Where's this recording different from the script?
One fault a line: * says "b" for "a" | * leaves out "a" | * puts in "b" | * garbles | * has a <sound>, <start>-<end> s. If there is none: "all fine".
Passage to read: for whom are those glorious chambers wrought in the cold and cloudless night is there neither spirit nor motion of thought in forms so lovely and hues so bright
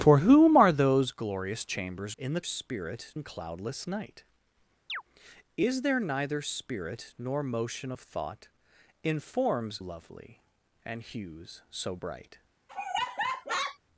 * leaves out "wrought"
* says "spirit" for "cold"
* has a chirp, 4.9-5.0 s
* leaves out "so"
* has a laugh, 12.7-13.8 s